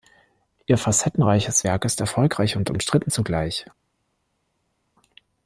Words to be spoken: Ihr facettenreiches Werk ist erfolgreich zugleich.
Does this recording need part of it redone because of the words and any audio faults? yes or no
yes